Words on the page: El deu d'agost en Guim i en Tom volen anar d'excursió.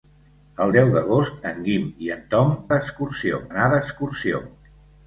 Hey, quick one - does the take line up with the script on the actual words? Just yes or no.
no